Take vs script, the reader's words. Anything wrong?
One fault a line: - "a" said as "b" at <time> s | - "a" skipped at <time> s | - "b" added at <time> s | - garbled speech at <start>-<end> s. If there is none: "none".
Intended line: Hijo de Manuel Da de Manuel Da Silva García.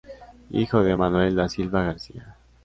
- "de Manuel Da" skipped at 1.5 s